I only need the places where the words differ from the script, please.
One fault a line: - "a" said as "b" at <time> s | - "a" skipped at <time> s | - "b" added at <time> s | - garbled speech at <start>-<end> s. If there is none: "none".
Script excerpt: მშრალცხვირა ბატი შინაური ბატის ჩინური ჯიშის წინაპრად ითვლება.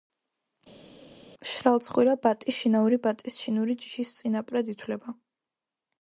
none